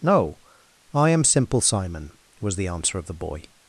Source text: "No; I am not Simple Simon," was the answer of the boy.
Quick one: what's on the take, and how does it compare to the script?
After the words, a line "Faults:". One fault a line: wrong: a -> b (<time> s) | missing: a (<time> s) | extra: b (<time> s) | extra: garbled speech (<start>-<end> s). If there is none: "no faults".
"No; I am Simple Simon," was the answer of the boy.
Faults:
missing: not (1.2 s)